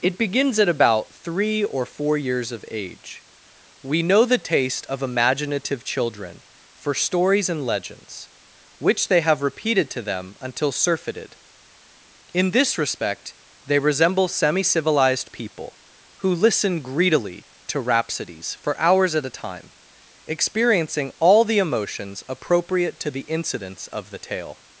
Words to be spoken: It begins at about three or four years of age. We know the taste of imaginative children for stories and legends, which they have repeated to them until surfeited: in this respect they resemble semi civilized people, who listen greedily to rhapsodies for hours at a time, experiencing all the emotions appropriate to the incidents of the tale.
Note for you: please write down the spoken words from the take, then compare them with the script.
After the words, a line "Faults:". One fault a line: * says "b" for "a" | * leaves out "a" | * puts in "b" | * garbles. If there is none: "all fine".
It begins at about three or four years of age. We know the taste of imaginative children for stories and legends, which they have repeated to them until surfeited: in this respect they resemble semi civilized people, who listen greedily to rhapsodies for hours at a time, experiencing all the emotions appropriate to the incidents of the tale.
Faults:
all fine